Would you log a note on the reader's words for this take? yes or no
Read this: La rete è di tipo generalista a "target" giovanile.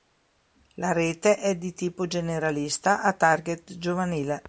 no